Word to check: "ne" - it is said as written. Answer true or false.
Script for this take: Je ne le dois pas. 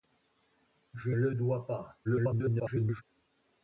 false